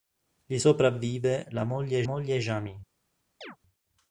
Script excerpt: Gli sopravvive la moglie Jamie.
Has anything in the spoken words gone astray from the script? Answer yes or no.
yes